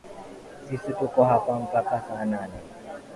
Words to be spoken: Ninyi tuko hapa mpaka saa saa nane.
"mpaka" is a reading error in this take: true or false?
false